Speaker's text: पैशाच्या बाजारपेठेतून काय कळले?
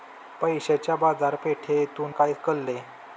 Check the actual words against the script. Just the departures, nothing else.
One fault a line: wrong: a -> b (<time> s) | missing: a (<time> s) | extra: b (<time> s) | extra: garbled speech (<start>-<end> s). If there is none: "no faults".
no faults